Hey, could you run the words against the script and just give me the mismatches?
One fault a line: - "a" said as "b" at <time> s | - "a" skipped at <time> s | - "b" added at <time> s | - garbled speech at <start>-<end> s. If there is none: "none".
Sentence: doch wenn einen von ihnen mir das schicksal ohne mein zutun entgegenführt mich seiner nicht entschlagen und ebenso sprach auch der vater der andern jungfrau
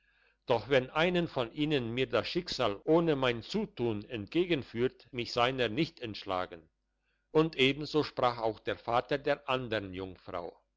none